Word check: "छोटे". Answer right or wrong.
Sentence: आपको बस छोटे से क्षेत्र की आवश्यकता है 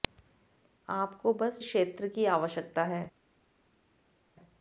wrong